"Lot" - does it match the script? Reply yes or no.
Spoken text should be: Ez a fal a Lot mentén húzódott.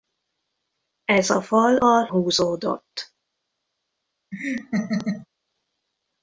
no